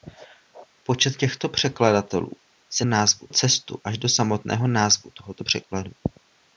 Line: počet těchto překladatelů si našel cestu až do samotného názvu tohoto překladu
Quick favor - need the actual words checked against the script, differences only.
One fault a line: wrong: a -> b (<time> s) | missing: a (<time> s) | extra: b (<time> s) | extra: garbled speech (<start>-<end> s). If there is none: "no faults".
wrong: našel -> názvu (2.8 s)